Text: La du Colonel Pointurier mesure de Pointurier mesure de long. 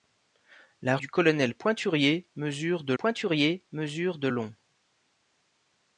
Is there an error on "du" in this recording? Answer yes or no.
no